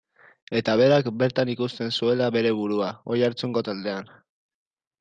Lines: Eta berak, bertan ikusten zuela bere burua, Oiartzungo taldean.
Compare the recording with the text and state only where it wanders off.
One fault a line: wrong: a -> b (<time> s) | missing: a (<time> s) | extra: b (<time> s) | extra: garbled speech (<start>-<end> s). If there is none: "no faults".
no faults